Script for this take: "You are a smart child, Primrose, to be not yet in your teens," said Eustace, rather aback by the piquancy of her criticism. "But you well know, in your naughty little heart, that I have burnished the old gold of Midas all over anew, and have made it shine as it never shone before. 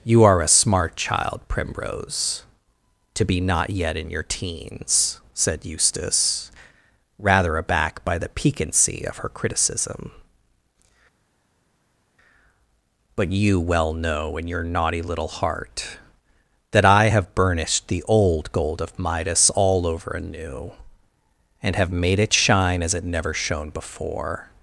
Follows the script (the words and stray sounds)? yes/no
yes